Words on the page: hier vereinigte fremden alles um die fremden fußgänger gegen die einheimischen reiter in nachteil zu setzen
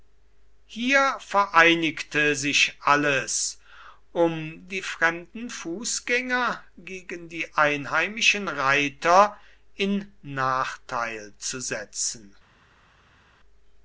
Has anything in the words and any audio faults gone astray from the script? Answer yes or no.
yes